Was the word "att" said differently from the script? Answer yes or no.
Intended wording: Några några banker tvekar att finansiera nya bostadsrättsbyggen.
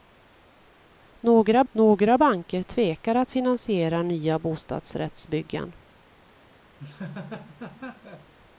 no